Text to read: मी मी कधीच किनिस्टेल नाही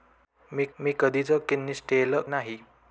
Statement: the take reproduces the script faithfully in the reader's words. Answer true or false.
true